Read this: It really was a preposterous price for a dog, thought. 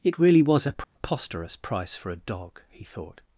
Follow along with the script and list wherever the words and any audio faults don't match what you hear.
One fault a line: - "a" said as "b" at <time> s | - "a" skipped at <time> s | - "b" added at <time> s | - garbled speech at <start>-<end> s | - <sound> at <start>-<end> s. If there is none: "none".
- dropout at 0.8-1.0 s
- "he" added at 2.7 s